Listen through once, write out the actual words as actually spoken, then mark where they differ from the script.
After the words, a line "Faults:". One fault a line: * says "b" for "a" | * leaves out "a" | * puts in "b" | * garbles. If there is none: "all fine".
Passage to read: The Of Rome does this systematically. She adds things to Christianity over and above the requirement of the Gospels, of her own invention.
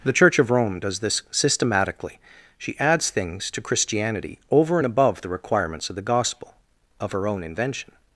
The Church of Rome does this systematically. She adds things to Christianity over and above the requirements of the Gospel, of her own invention.
Faults:
* puts in "Church"
* says "requirements" for "requirement"
* says "Gospel" for "Gospels"